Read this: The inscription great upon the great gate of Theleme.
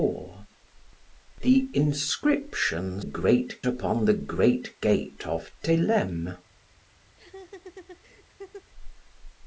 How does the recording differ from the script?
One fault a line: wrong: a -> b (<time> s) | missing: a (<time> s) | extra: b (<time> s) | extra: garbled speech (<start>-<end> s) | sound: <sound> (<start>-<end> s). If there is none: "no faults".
sound: laugh (7.1-8.7 s)